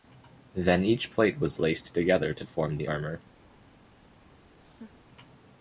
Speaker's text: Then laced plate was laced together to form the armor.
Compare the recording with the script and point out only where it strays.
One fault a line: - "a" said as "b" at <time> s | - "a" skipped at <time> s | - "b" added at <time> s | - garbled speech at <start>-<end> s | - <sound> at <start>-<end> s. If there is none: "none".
- "laced" said as "each" at 0.8 s
- laugh at 4.6-5.0 s